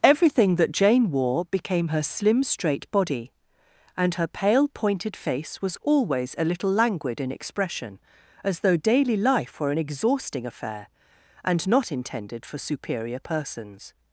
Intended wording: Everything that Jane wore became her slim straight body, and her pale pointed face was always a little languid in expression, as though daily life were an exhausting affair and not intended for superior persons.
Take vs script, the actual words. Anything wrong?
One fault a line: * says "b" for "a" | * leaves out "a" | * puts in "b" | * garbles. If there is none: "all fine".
all fine